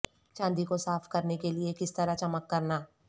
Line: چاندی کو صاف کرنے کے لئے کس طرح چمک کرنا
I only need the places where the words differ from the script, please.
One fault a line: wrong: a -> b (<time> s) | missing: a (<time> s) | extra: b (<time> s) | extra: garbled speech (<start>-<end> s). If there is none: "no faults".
no faults